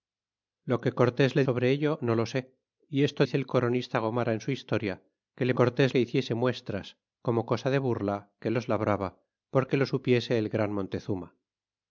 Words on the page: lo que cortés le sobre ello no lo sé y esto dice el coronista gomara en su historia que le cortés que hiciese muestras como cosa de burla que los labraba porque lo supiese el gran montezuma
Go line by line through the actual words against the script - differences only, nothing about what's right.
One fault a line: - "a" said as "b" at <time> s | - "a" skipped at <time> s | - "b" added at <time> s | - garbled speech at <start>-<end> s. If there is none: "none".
none